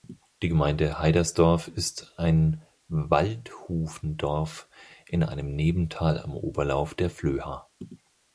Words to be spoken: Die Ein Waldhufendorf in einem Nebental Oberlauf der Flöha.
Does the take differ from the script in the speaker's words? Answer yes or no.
yes